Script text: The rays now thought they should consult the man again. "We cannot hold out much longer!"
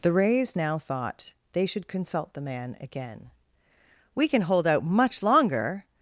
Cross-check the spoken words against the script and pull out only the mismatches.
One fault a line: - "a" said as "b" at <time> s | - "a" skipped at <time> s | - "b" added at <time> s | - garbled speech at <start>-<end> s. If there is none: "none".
- "cannot" said as "can" at 4.3 s